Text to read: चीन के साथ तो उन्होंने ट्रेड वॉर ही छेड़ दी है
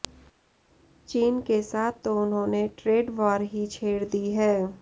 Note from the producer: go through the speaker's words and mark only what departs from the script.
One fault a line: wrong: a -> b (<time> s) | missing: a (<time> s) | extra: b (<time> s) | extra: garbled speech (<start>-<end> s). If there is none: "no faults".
no faults